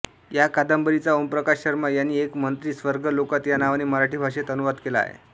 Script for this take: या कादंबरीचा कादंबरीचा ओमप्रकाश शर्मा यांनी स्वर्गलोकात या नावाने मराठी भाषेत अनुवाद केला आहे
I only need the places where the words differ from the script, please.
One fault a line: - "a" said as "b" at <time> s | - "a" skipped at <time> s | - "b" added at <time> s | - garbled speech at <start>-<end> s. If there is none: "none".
- "कादंबरीचा" skipped at 1.1 s
- "एक मंत्री" added at 2.2 s